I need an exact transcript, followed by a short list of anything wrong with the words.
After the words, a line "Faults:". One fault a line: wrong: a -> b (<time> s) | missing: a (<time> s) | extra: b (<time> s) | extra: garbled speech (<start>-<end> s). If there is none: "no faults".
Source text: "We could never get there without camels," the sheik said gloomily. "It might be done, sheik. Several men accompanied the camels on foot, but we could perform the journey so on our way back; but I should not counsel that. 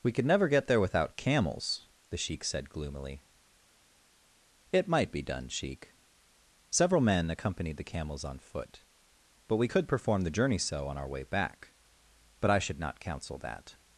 "We could never get there without camels," the sheik said gloomily. "It might be done, sheik. Several men accompanied the camels on foot, but we could perform the journey so on our way back; but I should not counsel that.
Faults:
no faults